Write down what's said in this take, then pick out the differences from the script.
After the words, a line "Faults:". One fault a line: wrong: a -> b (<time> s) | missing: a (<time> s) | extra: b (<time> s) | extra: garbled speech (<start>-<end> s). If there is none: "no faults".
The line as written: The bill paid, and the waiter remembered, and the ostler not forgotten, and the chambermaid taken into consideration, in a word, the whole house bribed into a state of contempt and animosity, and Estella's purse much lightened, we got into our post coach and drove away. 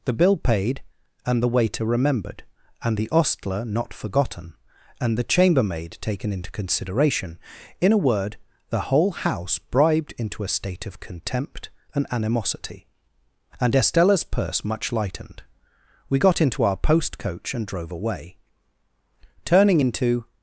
The bill paid, and the waiter remembered, and the ostler not forgotten, and the chambermaid taken into consideration, in a word, the whole house bribed into a state of contempt and animosity, and Estella's purse much lightened, we got into our post coach and drove away. Turning into
Faults:
extra: Turning into (19.4 s)